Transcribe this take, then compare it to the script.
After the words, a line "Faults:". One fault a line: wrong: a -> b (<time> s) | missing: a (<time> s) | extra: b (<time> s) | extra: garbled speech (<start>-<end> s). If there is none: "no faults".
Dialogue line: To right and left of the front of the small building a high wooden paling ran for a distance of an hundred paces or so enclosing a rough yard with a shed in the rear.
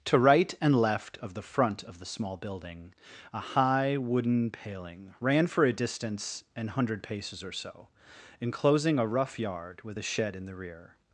To right and left of the front of the small building a high wooden paling ran for a distance an hundred paces or so enclosing a rough yard with a shed in the rear.
Faults:
missing: of (6.4 s)